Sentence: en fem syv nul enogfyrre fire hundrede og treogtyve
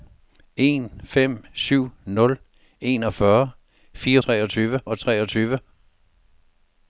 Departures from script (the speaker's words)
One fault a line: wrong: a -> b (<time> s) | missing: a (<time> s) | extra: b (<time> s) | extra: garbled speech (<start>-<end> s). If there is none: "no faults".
wrong: hundrede -> treogtyve (4.2 s)